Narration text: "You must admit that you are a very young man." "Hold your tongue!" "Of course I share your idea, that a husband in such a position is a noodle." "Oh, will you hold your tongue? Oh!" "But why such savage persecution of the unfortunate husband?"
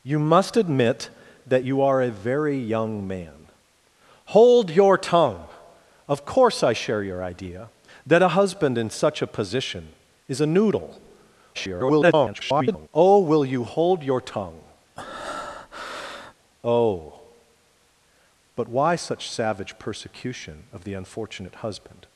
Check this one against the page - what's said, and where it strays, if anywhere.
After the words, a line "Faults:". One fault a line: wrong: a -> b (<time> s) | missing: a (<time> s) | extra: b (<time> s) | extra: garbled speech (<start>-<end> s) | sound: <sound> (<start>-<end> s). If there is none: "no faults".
"You must admit that you are a very young man." "Hold your tongue!" "Of course I share your idea, that a husband in such a position is a noodle." [garbled] "Oh, will you hold your tongue? Oh!" "But why such savage persecution of the unfortunate husband?"
Faults:
extra: garbled speech (11.5-12.9 s)
sound: breath (15.0-16.3 s)